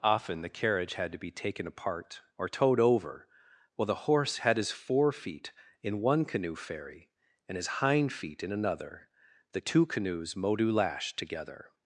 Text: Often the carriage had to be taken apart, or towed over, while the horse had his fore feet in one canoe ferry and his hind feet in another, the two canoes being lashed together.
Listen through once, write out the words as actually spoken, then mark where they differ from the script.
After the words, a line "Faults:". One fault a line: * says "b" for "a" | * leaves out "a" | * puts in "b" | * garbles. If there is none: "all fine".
Often the carriage had to be taken apart, or towed over, while the horse had his fore feet in one canoe ferry and his hind feet in another, the two canoes modu lashed together.
Faults:
* says "modu" for "being"